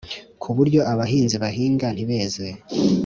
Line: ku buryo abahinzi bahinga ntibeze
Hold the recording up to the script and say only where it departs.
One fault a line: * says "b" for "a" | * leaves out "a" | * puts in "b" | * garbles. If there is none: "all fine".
all fine